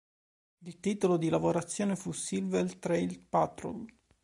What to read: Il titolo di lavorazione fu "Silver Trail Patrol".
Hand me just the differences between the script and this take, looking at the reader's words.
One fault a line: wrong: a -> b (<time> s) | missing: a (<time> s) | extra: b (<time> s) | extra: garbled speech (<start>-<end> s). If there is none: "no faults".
no faults